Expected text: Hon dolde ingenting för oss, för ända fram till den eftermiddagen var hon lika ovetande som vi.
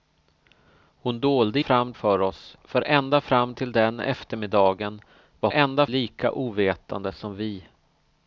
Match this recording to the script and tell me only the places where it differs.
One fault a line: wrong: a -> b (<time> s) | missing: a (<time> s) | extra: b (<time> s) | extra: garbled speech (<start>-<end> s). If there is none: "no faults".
wrong: ingenting -> fram (1.6 s)
wrong: hon -> ända (5.5 s)